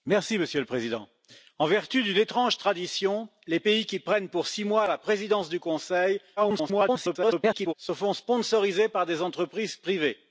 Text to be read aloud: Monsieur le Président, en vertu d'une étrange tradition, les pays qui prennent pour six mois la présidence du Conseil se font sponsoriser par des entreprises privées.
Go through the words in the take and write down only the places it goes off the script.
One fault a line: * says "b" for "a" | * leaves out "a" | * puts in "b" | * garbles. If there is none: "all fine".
* garbles